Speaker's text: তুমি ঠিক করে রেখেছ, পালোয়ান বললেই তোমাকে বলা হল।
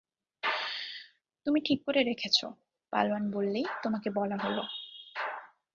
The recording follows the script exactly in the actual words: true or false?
true